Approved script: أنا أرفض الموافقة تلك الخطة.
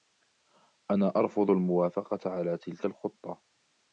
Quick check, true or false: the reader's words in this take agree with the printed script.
false